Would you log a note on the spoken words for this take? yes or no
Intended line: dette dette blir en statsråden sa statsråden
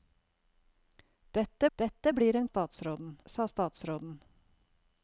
no